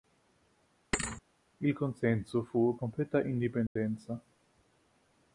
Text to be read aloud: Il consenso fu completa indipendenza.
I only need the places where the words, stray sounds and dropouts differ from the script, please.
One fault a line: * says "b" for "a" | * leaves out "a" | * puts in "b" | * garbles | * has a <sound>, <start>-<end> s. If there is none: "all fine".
* has a thud, 0.9-1.2 s
* has a dropout, 3.7-3.8 s